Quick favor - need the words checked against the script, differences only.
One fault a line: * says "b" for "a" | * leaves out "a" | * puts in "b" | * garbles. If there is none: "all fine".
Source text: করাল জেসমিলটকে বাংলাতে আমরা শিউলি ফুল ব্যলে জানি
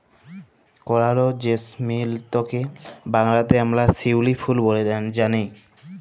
all fine